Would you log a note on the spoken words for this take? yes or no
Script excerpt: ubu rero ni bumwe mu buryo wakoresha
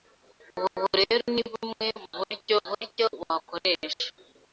yes